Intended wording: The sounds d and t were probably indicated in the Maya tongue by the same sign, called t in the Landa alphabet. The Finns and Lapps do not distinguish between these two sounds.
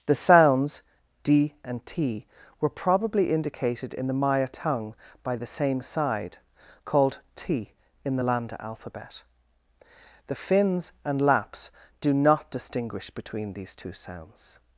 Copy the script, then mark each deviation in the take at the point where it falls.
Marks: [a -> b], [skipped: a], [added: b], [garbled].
The sounds d and t were probably indicated in the Maya tongue by the same [sign, -> side] called t in the Landa alphabet. The Finns and Lapps do not distinguish between these two sounds.